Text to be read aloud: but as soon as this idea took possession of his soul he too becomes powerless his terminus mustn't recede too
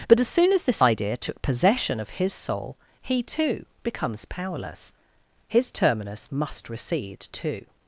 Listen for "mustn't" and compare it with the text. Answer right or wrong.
wrong